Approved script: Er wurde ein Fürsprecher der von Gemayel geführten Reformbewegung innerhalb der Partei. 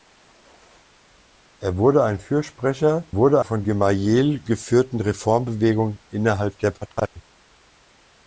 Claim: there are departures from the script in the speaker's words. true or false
true